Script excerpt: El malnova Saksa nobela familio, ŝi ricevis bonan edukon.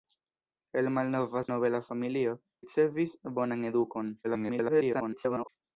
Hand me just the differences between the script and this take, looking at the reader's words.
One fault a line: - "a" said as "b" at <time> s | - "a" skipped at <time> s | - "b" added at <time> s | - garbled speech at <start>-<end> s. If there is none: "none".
- "Saksa" skipped at 1.4 s
- "ŝi" skipped at 2.3 s
- garbled speech at 4.2-5.5 s